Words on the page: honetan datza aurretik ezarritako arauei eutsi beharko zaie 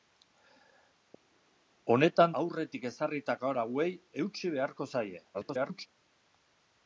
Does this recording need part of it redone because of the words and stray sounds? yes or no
yes